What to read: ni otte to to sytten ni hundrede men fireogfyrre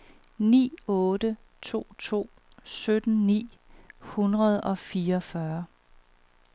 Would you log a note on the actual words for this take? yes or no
yes